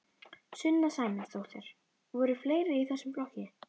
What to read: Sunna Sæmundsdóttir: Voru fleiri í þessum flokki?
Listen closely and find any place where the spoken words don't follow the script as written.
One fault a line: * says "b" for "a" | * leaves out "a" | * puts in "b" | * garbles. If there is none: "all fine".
all fine